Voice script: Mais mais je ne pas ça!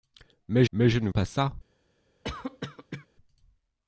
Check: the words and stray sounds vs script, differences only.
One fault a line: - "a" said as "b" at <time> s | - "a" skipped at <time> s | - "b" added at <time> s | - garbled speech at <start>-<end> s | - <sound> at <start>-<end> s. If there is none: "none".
- cough at 2.2-3.1 s